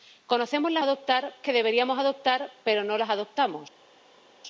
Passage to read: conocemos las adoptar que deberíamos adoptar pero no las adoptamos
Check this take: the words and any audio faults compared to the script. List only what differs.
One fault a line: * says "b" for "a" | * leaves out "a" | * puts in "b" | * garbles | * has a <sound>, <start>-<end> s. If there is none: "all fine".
all fine